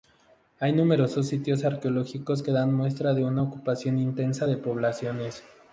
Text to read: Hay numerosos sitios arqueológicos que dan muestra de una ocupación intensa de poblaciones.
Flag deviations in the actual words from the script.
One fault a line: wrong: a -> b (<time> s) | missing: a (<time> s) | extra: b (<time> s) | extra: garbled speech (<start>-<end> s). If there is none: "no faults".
no faults